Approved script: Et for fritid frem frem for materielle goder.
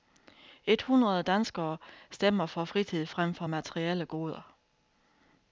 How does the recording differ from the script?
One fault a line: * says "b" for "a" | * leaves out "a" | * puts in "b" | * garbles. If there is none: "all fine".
* puts in "hundrede danskere stemmer"
* leaves out "frem"